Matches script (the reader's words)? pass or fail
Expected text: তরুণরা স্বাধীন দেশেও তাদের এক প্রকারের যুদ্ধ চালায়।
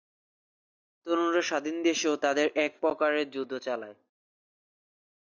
pass